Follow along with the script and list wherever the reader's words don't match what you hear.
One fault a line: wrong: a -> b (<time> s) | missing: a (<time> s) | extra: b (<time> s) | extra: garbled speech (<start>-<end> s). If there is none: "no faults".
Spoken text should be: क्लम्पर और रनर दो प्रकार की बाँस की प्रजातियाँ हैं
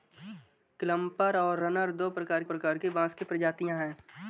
extra: प्रकार (2.4 s)